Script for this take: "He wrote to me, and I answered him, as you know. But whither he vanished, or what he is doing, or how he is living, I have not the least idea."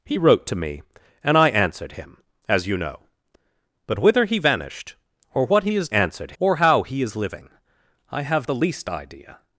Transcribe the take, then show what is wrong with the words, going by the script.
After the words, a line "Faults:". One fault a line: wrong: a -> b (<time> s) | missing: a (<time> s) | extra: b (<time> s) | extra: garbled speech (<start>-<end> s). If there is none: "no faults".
"He wrote to me, and I answered him, as you know. But whither he vanished, or what he is answered, or how he is living, I have the least idea."
Faults:
wrong: doing -> answered (5.9 s)
missing: not (8.5 s)